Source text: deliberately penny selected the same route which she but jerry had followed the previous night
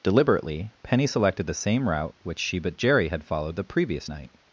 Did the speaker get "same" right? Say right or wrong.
right